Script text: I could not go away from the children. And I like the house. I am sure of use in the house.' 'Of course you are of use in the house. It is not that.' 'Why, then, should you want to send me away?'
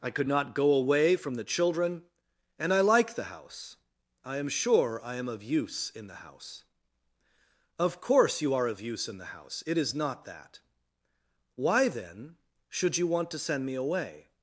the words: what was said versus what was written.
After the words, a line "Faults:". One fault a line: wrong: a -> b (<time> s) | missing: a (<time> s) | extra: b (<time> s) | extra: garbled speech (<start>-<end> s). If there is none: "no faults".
I could not go away from the children. And I like the house. I am sure I am of use in the house.' 'Of course you are of use in the house. It is not that.' 'Why, then, should you want to send me away?'
Faults:
extra: I am (5.0 s)